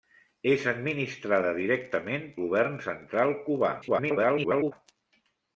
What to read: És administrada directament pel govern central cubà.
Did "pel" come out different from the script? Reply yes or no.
yes